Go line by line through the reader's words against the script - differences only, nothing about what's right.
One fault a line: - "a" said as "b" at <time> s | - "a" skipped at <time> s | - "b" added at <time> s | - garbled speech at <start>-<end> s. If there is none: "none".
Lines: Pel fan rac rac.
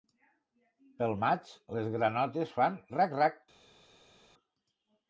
- "maig les granotes" added at 1.2 s